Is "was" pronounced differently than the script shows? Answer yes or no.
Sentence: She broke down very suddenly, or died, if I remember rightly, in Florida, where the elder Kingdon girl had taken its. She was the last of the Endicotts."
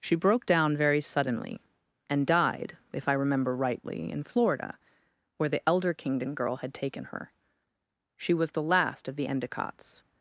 no